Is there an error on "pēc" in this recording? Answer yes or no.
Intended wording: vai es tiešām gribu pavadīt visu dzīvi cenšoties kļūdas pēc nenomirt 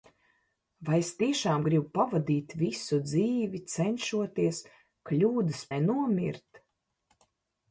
yes